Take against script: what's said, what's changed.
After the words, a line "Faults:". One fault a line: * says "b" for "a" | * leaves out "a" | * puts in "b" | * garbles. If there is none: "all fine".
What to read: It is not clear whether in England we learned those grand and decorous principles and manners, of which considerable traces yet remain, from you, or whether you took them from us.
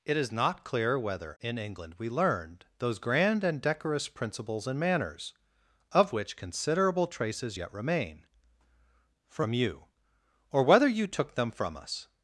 It is not clear whether in England we learned those grand and decorous principles and manners, of which considerable traces yet remain, from you, or whether you took them from us.
Faults:
all fine